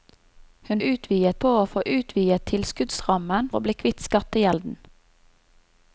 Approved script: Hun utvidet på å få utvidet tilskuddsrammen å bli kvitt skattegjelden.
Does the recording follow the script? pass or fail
pass